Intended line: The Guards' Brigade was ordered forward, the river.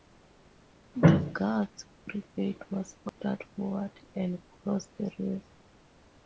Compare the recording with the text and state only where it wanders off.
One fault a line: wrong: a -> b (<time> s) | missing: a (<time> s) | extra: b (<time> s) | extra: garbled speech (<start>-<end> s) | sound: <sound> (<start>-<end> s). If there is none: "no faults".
sound: dropout (3.1-3.2 s)
extra: and crossed (4.1 s)